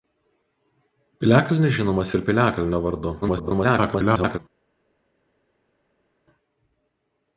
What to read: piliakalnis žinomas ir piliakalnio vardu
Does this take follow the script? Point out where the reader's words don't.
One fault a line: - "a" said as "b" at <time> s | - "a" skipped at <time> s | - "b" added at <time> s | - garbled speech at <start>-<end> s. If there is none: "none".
- garbled speech at 3.2-4.4 s